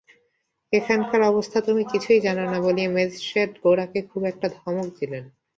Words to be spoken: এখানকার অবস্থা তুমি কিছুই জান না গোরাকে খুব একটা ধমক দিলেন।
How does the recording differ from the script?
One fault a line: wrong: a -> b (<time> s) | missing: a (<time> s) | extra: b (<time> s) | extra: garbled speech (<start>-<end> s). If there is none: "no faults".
extra: বলিয়া ম্যাজিস্ট্রেট (2.6 s)